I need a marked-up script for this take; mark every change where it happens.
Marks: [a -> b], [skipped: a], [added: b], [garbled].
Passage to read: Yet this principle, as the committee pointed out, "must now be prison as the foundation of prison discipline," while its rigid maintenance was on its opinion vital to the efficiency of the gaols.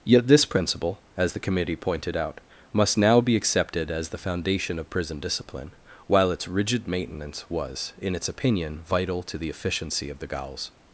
Yet this principle, as the committee pointed out, "must now be [prison -> accepted] as the foundation of prison discipline," while its rigid maintenance was [on -> in] its opinion vital to the efficiency of the gaols.